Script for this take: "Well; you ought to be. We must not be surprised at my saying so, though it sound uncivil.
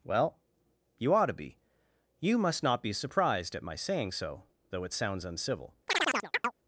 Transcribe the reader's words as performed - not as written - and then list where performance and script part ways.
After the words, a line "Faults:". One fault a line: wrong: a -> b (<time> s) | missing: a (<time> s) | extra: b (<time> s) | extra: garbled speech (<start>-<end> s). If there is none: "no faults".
"Well; you ought to be. You must not be surprised at my saying so, though it sounds uncivil.
Faults:
wrong: We -> You (2.2 s)
wrong: sound -> sounds (4.9 s)